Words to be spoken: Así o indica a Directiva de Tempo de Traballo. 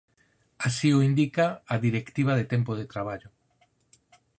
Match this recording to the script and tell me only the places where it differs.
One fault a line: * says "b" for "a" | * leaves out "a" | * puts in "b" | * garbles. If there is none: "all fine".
all fine